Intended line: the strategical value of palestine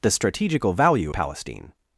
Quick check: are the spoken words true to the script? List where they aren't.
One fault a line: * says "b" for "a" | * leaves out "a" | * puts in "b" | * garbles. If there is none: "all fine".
* leaves out "of"